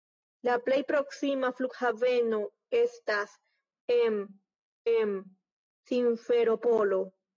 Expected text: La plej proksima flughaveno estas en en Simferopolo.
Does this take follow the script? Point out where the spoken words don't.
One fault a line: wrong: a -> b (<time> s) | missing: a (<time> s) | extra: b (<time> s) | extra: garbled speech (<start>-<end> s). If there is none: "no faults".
no faults